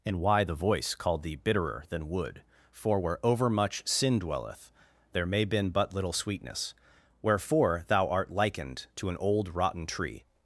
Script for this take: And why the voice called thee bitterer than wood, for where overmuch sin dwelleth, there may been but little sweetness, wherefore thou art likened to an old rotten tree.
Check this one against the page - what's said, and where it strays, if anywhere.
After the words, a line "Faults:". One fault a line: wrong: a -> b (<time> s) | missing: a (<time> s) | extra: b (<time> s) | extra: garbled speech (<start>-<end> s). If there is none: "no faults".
And why the voice called thee bitterer than wood, for where overmuch sin dwelleth, there may been but little sweetness, wherefore thou art likened to an old rotten tree.
Faults:
no faults